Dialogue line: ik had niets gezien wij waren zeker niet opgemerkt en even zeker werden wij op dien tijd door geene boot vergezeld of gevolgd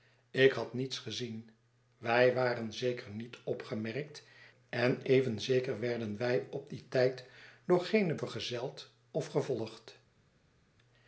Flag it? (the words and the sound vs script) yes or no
yes